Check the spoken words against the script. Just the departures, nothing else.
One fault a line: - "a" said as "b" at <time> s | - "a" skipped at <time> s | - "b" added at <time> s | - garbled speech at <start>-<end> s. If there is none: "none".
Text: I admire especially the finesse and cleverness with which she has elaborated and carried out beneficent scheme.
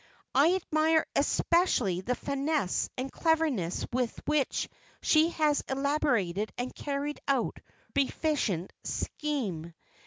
none